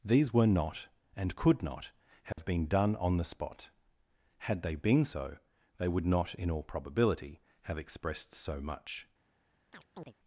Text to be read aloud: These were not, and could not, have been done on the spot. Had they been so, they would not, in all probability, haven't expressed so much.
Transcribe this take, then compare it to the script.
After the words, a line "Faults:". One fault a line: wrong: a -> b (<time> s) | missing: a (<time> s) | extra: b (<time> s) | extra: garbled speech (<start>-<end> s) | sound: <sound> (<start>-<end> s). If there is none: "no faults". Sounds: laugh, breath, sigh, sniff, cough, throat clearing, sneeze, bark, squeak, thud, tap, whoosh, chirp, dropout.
These were not, and could not, have been done on the spot. Had they been so, they would not, in all probability, have expressed so much.
Faults:
sound: dropout (2.3-2.4 s)
wrong: haven't -> have (7.6 s)
sound: chirp (9.7-10.1 s)